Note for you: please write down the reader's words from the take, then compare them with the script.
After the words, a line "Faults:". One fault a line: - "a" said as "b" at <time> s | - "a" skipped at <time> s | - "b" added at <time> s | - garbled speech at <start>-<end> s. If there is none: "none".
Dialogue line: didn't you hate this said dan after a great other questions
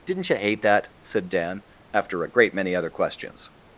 didn't you hate that said dan after a great many other questions
Faults:
- "this" said as "that" at 0.6 s
- "many" added at 2.5 s